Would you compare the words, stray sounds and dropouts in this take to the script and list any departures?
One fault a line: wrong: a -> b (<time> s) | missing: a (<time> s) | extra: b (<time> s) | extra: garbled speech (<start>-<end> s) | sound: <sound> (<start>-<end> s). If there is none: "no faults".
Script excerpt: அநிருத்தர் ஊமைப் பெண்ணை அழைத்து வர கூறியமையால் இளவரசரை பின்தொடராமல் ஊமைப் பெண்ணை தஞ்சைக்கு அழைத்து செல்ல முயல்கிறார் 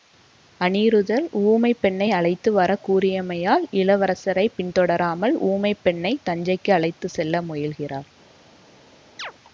sound: chirp (9.2-9.3 s)